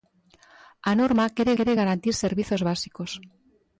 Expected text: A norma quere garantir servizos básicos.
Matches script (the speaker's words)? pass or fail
fail